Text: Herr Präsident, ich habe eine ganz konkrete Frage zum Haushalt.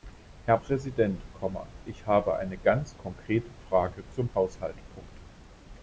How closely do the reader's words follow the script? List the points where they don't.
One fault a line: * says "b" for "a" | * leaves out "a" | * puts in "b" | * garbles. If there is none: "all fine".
all fine